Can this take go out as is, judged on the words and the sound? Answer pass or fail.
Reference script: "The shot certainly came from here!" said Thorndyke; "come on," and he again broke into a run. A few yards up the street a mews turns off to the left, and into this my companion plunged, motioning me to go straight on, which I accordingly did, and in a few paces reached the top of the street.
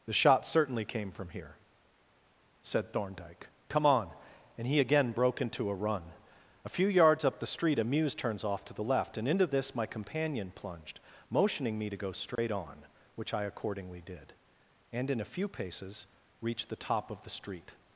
fail